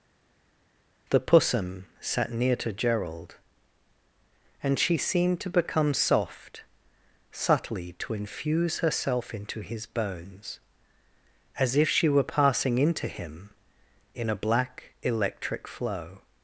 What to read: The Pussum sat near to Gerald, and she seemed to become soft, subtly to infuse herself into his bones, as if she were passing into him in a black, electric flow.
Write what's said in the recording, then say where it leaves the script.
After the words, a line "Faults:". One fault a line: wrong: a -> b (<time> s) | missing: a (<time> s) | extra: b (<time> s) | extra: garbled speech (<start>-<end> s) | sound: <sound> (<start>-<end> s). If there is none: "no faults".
The Pussum sat near to Gerald, and she seemed to become soft, subtly to infuse herself into his bones, as if she were passing into him in a black, electric flow.
Faults:
no faults